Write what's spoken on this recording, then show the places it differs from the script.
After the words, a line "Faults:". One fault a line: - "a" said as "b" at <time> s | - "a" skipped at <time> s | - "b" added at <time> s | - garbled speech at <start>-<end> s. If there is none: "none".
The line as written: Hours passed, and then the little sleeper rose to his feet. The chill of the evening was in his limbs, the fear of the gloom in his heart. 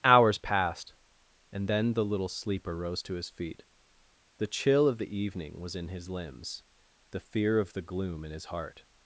Hours passed, and then the little sleeper rose to his feet. The chill of the evening was in his limbs, the fear of the gloom in his heart.
Faults:
none